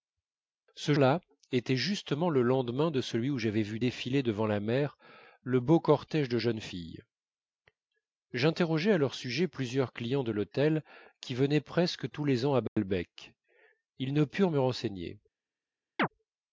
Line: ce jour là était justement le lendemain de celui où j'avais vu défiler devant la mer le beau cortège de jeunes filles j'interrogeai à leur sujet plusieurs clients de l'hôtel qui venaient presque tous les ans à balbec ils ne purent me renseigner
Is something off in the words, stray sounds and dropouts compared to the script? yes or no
yes